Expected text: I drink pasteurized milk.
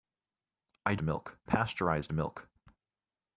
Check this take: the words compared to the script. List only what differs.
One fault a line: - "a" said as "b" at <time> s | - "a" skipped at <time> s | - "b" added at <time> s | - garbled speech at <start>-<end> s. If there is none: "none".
- "drink" said as "milk" at 1.0 s